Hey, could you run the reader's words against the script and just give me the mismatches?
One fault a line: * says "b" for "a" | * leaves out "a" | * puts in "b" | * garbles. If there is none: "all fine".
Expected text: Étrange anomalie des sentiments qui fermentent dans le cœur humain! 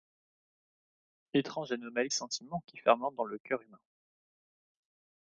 * leaves out "des"